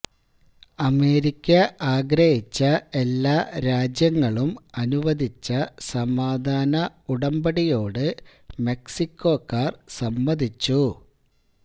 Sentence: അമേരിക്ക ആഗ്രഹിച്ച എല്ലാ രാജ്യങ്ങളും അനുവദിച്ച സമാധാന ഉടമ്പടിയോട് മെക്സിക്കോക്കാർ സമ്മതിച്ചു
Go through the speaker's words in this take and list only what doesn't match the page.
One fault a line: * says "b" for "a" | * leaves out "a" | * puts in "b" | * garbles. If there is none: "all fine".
all fine